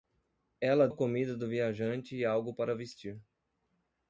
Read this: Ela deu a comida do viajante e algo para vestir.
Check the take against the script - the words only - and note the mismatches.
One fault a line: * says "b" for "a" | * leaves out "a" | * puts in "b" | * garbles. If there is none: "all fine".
* leaves out "deu"